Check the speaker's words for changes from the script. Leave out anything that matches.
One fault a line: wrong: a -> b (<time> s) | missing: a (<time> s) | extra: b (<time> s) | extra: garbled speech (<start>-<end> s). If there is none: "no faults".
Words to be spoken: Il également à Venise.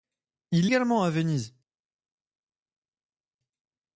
no faults